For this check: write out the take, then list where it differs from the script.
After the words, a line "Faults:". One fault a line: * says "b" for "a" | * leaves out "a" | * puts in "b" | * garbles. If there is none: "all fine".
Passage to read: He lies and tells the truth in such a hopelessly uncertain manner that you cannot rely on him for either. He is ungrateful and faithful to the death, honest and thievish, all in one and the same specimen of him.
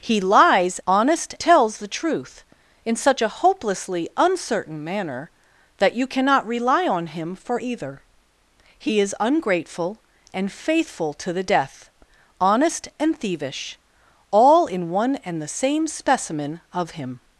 He lies honest tells the truth in such a hopelessly uncertain manner that you cannot rely on him for either. He is ungrateful and faithful to the death, honest and thievish, all in one and the same specimen of him.
Faults:
* says "honest" for "and"